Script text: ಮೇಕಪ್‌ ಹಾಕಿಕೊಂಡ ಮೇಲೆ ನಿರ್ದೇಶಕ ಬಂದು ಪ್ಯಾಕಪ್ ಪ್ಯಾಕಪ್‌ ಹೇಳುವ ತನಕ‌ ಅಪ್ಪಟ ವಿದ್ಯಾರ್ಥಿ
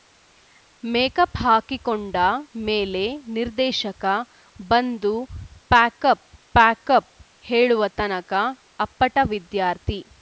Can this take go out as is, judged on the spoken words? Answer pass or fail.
pass